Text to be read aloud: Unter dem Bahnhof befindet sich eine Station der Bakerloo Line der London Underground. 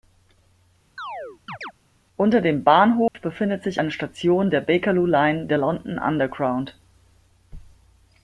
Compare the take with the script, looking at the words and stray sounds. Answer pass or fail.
fail